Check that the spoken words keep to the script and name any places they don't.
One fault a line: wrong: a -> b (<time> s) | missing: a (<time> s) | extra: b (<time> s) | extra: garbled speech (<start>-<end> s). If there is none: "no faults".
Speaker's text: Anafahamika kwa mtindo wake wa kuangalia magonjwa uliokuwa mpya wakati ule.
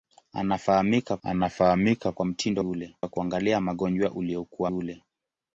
extra: anafahamika (1.2 s)
wrong: wake -> ule (2.6 s)
missing: mpya wakati (4.7 s)